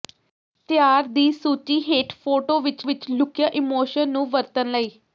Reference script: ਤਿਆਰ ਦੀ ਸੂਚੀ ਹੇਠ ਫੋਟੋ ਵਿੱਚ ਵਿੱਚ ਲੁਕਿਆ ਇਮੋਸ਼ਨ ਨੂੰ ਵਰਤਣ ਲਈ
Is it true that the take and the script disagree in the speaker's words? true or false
false